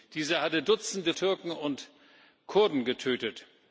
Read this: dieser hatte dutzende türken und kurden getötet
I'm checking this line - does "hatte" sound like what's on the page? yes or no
yes